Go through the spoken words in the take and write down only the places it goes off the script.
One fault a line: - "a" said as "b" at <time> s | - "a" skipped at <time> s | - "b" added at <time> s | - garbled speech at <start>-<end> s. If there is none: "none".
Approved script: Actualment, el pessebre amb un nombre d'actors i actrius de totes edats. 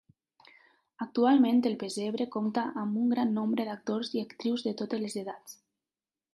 - "compta" added at 2.4 s
- "gran" added at 3.1 s
- "les" added at 5.1 s